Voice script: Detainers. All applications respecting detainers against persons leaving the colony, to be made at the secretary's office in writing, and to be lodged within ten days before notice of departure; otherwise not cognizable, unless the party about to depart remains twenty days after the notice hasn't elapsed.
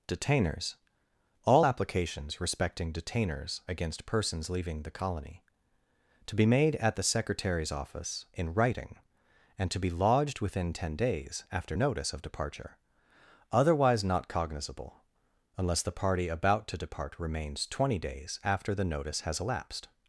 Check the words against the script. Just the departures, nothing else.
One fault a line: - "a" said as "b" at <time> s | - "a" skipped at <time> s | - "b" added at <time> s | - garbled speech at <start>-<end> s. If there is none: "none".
- "before" said as "after" at 11.5 s
- "hasn't" said as "has" at 19.2 s